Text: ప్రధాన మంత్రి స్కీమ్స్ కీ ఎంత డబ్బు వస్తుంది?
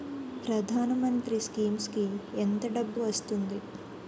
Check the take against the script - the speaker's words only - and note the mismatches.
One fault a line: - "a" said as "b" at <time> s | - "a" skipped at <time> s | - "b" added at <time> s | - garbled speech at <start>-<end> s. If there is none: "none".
none